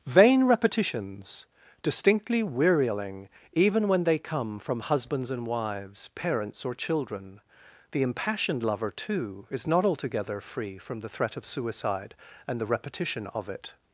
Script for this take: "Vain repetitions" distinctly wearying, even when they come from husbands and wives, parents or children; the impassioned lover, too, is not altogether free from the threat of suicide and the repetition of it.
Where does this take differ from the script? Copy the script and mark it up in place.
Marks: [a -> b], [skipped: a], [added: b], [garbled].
"Vain repetitions" distinctly wearying, even when they come from husbands and wives, parents or children; the impassioned lover, too, is not altogether free from the threat of suicide and the repetition of it.